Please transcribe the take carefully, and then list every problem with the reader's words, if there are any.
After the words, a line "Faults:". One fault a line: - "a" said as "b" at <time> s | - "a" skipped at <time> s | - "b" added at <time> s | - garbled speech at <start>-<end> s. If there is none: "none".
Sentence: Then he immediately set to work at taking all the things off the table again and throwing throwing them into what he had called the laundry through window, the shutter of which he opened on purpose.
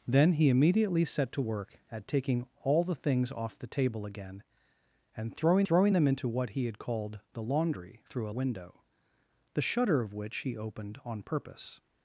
Then he immediately set to work at taking all the things off the table again and throwing throwing them into what he had called the laundry through window, the shutter of which he opened on purpose.
Faults:
none